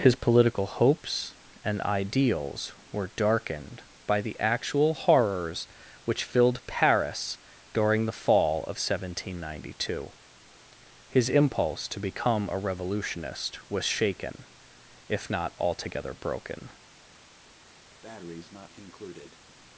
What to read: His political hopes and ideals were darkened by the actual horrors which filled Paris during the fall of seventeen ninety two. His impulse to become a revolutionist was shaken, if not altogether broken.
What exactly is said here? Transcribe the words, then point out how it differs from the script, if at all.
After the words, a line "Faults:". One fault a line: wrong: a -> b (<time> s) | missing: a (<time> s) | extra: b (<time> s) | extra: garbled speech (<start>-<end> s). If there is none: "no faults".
His political hopes and ideals were darkened by the actual horrors which filled Paris during the fall of seventeen ninety two. His impulse to become a revolutionist was shaken, if not altogether broken.
Faults:
no faults